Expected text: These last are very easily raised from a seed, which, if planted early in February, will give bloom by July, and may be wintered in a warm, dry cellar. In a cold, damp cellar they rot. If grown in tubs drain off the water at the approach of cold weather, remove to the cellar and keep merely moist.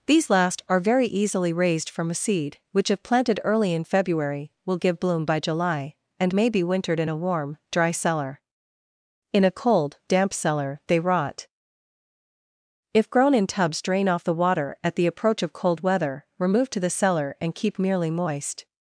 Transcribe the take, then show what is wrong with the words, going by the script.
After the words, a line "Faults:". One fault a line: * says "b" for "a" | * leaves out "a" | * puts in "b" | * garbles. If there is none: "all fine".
These last are very easily raised from a seed, which, if planted early in February, will give bloom by July, and may be wintered in a warm, dry cellar. In a cold, damp cellar they rot. If grown in tubs drain off the water at the approach of cold weather, remove to the cellar and keep merely moist.
Faults:
all fine